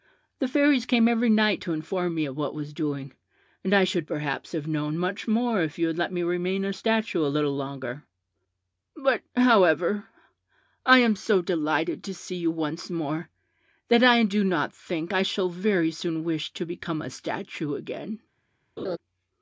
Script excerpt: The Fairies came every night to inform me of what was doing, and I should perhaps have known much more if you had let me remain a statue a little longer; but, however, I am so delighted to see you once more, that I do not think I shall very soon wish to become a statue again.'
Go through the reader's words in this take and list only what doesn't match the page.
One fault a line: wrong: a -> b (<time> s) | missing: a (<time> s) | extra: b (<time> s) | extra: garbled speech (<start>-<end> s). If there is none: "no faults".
no faults